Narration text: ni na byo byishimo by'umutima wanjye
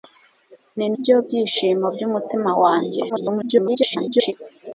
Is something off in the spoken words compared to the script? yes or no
yes